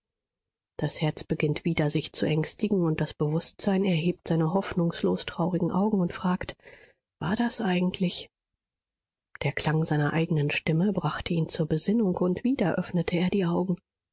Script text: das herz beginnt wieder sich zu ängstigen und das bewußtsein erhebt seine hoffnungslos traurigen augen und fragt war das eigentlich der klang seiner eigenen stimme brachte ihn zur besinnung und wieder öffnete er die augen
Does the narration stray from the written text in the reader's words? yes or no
no